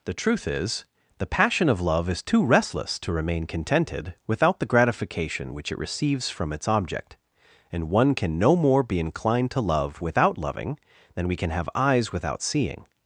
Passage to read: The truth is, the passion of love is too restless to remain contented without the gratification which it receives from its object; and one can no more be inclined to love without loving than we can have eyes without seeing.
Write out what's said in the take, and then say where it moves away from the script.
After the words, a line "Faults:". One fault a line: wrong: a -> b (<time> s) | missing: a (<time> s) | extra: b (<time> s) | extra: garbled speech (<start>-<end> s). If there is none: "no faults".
The truth is, the passion of love is too restless to remain contented without the gratification which it receives from its object; and one can no more be inclined to love without loving than we can have eyes without seeing.
Faults:
no faults